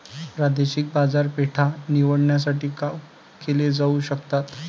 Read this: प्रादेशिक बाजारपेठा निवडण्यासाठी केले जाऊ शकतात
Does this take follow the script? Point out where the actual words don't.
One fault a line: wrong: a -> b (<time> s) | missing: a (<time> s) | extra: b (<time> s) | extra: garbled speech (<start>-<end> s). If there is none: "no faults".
no faults